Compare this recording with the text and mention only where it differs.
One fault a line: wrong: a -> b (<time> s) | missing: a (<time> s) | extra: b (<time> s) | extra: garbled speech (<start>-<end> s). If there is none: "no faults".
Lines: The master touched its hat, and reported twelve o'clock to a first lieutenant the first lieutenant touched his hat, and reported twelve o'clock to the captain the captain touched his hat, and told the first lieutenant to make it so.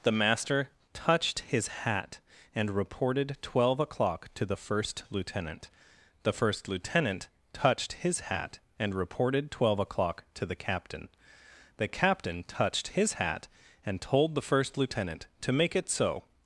wrong: its -> his (1.4 s)
wrong: a -> the (4.5 s)